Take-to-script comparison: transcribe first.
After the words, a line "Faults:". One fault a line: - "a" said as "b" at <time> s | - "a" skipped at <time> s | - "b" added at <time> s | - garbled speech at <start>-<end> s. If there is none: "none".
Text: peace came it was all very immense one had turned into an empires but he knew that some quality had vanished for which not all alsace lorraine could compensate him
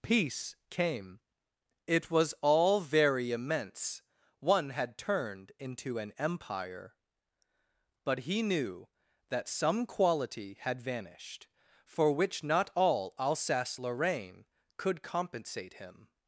peace came it was all very immense one had turned into an empire but he knew that some quality had vanished for which not all alsace lorraine could compensate him
Faults:
- "empires" said as "empire" at 6.2 s